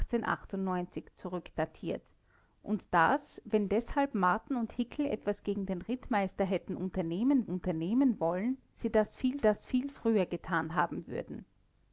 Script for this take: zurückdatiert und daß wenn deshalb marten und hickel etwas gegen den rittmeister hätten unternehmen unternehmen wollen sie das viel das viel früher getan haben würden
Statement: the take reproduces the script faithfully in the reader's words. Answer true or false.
true